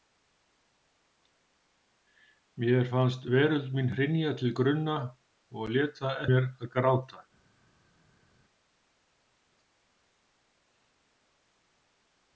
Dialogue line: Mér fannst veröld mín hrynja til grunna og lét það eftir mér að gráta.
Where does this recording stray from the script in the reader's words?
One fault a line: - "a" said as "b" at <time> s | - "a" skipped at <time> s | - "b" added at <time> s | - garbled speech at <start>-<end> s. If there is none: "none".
- "eftir" skipped at 6.2 s